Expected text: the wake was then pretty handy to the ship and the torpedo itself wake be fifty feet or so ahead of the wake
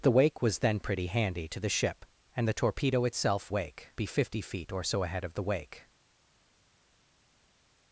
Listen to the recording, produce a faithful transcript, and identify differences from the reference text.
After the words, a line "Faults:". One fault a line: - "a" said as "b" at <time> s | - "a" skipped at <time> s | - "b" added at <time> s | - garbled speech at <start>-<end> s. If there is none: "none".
the wake was then pretty handy to the ship and the torpedo itself wake be fifty feet or so ahead of the wake
Faults:
none